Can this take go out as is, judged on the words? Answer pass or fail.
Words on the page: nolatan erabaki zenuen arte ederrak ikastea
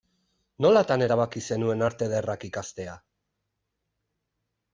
pass